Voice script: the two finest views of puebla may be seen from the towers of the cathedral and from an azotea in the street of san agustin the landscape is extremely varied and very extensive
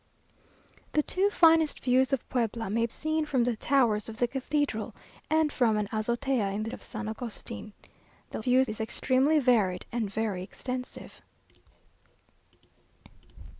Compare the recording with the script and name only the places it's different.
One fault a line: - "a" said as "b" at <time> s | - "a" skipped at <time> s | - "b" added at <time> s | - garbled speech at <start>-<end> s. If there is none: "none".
- "be" skipped at 2.9 s
- "street" skipped at 6.7 s
- "landscape" said as "views" at 8.4 s